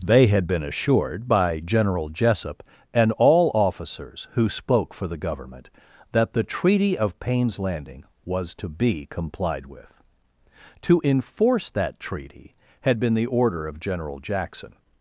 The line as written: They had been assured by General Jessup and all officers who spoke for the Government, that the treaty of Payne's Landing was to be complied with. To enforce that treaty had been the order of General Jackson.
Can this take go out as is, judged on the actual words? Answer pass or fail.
pass